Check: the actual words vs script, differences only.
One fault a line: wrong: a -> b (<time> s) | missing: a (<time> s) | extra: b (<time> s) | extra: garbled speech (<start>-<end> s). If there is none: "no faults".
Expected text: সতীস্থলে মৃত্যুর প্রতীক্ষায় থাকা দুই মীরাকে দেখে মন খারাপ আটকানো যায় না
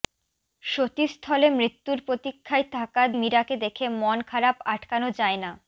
missing: দুই (3.0 s)